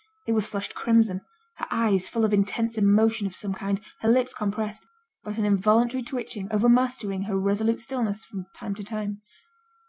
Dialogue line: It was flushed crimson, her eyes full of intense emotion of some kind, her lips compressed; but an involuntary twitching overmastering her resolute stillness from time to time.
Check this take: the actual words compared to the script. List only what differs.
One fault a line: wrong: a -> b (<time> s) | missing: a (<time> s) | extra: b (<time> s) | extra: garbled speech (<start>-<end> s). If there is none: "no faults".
no faults